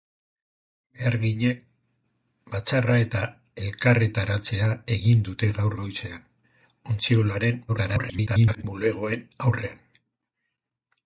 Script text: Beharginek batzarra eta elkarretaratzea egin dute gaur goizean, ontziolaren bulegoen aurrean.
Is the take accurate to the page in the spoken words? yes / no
no